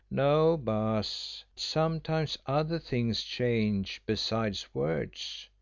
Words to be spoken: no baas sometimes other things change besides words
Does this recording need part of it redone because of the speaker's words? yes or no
no